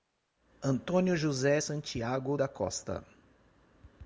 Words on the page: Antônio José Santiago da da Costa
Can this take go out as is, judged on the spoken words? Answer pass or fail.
fail